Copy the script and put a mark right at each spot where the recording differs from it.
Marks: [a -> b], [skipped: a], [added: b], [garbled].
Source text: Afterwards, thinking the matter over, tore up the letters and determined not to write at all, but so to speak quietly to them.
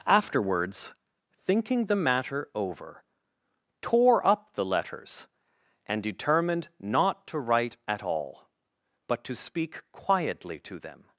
Afterwards, thinking the matter over, tore up the letters and determined not to write at all, but [skipped: so] to speak quietly to them.